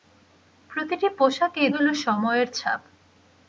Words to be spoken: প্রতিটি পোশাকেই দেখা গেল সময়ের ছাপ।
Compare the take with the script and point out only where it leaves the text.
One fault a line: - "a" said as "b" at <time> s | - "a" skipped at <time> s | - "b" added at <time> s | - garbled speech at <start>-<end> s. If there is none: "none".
- "দেখা" skipped at 1.7 s